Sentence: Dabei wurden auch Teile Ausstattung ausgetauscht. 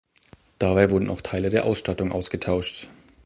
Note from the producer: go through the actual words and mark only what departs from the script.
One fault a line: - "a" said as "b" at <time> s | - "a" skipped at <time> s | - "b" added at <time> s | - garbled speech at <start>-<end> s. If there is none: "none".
- "der" added at 1.5 s